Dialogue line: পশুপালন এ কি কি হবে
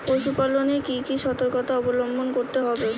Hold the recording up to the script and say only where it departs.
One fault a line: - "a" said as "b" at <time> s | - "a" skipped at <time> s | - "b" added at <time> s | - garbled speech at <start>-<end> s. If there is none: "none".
- "সর্তকতা অবলম্বন করতে" added at 1.2 s